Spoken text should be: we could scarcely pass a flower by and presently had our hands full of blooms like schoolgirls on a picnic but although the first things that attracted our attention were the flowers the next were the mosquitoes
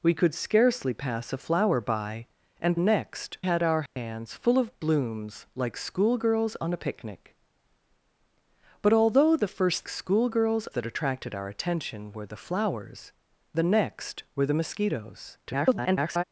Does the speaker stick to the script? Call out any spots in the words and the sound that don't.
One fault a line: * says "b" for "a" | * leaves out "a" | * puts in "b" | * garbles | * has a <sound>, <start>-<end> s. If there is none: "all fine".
* says "next" for "presently"
* has a dropout, 3.9-4.0 s
* says "schoolgirls" for "things"
* garbles